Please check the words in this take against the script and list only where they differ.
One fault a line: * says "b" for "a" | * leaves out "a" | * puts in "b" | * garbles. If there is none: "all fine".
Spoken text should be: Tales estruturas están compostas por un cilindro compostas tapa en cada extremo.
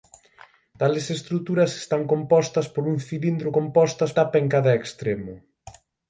all fine